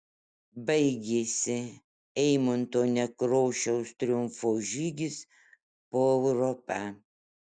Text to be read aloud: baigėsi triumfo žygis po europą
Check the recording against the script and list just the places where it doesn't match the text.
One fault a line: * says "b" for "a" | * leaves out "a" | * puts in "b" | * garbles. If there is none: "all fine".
* puts in "eimunto nekrošiaus"